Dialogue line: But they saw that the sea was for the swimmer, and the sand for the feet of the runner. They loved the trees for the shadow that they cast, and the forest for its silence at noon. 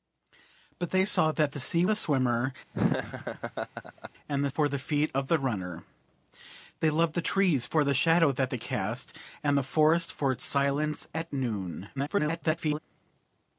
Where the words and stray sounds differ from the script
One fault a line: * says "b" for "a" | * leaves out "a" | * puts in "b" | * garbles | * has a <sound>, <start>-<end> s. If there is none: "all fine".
* leaves out "was for"
* has a laugh, 2.7-4.1 s
* leaves out "sand"
* garbles